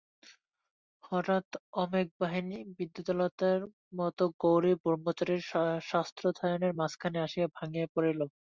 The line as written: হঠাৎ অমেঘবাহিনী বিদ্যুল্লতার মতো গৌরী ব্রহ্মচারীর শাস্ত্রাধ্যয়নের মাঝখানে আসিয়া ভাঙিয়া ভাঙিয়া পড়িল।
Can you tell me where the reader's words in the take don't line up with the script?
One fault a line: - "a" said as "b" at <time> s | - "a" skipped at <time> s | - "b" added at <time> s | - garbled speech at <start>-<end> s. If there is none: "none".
- "ভাঙিয়া" skipped at 7.9 s